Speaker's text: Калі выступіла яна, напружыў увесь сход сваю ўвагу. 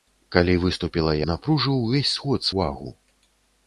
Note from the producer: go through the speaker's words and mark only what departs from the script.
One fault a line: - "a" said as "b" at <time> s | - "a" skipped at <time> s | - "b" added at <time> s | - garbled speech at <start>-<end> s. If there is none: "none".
- "яна" skipped at 1.1 s
- "сваю" skipped at 2.5 s